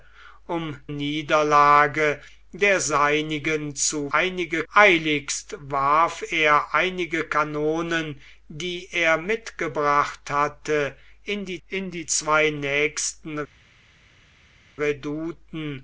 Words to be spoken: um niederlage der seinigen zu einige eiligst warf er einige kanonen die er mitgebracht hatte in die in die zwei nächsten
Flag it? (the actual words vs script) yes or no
no